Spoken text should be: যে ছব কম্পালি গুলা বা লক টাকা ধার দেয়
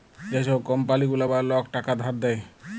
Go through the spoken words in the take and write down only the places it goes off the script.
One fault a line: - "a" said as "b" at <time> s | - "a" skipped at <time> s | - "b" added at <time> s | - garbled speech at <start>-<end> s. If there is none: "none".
none